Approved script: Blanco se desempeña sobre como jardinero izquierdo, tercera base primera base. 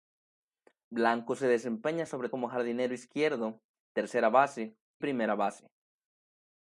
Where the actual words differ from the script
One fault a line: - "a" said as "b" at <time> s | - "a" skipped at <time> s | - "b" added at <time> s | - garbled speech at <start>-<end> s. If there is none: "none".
none